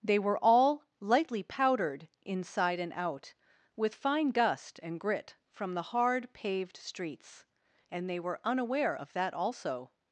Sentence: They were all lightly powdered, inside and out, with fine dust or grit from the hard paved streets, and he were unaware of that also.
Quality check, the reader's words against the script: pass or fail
fail